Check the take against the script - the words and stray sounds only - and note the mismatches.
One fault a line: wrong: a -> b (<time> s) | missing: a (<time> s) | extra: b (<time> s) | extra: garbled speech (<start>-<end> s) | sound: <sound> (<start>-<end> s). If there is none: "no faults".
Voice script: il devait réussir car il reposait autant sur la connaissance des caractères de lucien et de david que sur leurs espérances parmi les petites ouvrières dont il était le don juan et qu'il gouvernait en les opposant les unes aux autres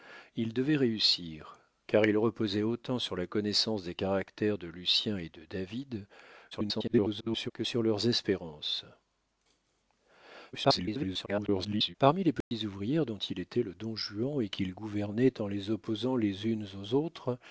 extra: garbled speech (6.5-7.5 s)
extra: garbled speech (10.5-12.0 s)
sound: dropout (12.4-12.5 s)